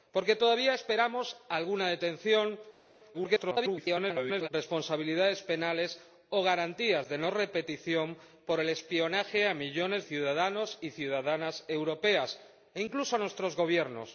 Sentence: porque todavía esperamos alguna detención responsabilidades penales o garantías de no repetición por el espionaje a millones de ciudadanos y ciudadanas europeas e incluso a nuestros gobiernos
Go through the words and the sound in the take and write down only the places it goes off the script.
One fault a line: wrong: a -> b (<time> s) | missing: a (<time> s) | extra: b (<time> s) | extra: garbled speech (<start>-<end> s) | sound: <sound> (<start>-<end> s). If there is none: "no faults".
extra: garbled speech (3.1-4.5 s)
missing: de (10.0 s)